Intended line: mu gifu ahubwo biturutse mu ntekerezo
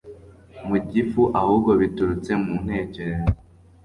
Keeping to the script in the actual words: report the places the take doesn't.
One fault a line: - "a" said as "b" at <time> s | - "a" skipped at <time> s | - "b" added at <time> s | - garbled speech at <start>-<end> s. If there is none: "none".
none